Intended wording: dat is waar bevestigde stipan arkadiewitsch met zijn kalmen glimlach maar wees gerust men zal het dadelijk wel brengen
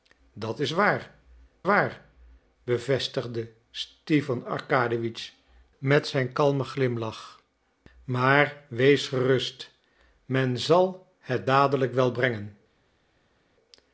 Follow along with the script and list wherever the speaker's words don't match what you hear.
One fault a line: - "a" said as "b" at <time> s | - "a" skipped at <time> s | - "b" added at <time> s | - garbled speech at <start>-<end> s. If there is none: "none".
- "waar" added at 1.6 s